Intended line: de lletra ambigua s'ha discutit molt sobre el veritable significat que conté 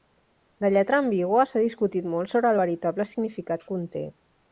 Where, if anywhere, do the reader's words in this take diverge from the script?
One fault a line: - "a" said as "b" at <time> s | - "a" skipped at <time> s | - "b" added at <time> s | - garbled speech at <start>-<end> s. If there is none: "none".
- "que" skipped at 3.7 s